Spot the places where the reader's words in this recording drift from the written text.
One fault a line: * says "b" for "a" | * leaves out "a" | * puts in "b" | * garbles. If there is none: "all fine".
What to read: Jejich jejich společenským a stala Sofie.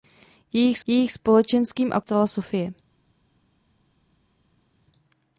all fine